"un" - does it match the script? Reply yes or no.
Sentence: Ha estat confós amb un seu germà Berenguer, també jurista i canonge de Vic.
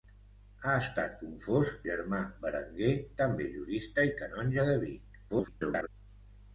no